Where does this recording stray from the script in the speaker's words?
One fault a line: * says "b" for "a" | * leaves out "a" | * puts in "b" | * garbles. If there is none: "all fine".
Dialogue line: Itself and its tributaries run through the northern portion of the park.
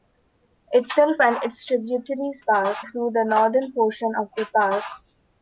* says "park" for "run"